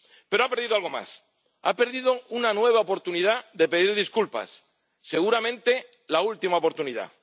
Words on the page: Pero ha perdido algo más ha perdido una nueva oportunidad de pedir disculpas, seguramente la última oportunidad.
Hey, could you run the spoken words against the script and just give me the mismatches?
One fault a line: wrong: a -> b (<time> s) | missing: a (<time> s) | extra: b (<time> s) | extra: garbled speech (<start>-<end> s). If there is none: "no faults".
no faults